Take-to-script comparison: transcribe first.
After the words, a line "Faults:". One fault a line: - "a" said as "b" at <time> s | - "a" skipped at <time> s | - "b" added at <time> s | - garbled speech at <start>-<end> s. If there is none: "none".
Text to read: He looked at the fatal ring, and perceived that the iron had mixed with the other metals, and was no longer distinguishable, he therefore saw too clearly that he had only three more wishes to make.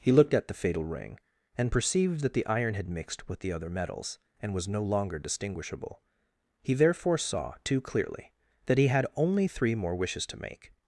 He looked at the fatal ring, and perceived that the iron had mixed with the other metals, and was no longer distinguishable, he therefore saw too clearly that he had only three more wishes to make.
Faults:
none